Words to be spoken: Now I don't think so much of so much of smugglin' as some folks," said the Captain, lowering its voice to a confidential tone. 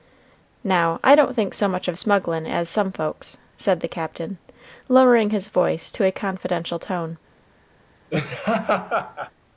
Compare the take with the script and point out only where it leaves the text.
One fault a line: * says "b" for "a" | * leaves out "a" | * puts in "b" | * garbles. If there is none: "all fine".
* leaves out "so much of"
* says "his" for "its"